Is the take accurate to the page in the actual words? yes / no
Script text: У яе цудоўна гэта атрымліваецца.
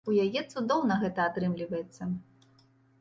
yes